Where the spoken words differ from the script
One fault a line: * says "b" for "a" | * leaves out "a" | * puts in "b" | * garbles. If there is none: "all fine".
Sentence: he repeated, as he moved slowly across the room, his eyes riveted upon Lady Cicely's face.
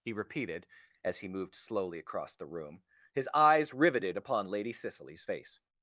all fine